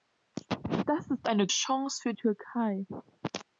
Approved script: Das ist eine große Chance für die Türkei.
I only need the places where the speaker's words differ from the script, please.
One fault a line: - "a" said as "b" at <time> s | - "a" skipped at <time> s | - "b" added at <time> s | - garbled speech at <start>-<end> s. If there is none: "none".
- "große" skipped at 1.5 s
- "die" skipped at 2.1 s